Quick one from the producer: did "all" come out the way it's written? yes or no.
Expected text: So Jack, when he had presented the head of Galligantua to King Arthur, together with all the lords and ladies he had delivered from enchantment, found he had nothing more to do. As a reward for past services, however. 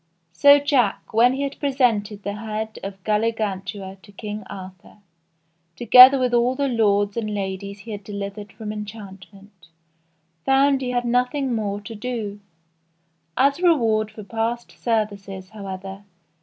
yes